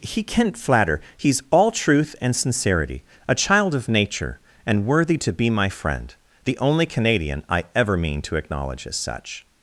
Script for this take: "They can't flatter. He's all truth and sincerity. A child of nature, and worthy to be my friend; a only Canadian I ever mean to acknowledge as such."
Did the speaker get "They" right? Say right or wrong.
wrong